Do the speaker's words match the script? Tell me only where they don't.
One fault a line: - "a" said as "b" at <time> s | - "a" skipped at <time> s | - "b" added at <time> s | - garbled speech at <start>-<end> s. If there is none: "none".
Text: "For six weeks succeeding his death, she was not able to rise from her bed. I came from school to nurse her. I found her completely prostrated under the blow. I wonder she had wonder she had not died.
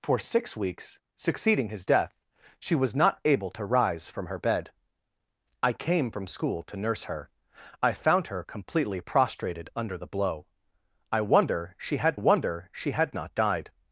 none